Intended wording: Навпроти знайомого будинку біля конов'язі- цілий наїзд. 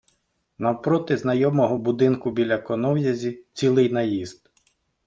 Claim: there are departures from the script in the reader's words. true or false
false